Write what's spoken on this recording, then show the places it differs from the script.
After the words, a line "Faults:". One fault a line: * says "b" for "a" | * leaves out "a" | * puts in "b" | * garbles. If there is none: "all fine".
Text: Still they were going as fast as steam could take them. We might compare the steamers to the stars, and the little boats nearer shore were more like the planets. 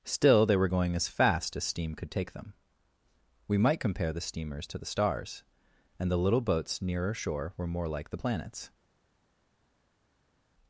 Still they were going as fast as steam could take them. We might compare the steamers to the stars, and the little boats nearer shore were more like the planets.
Faults:
all fine